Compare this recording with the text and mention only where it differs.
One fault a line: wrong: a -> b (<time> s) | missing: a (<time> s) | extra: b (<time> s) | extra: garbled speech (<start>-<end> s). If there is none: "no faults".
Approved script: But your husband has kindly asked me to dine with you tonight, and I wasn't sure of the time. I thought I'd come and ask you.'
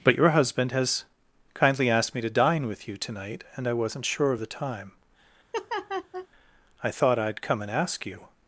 no faults